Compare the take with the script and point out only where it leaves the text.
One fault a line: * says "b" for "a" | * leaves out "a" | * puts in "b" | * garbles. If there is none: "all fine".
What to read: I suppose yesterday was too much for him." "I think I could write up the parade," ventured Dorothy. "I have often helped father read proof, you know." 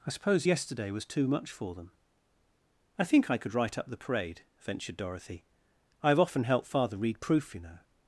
* says "them" for "him"